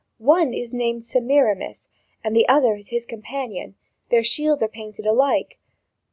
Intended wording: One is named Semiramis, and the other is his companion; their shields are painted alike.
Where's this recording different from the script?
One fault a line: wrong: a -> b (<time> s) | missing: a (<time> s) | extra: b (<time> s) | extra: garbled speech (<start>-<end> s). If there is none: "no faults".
no faults